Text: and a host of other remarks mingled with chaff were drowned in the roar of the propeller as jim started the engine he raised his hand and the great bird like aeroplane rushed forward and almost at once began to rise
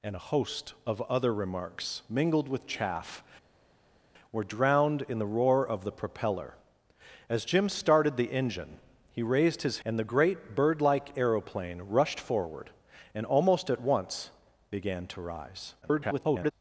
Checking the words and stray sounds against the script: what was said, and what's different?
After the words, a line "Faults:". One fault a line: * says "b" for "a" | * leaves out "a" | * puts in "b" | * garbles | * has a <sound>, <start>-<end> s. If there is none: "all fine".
and a host of other remarks mingled with chaff were drowned in the roar of the propeller as jim started the engine he raised his and the great bird like aeroplane rushed forward and almost at once began to rise [garbled]
Faults:
* leaves out "hand"
* garbles